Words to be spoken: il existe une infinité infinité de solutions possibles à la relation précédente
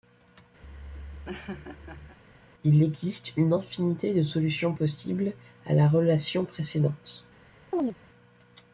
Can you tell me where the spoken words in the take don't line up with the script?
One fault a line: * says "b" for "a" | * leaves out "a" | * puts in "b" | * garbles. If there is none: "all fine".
* leaves out "infinité"